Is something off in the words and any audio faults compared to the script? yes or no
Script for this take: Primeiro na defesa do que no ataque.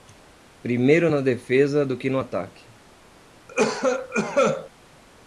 yes